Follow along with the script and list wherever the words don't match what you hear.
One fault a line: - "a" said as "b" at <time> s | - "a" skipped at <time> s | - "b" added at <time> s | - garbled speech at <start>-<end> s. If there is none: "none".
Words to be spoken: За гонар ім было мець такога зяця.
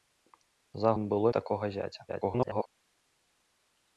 - "гонар" skipped at 0.9 s
- "мець" skipped at 1.3 s
- garbled speech at 2.1-2.7 s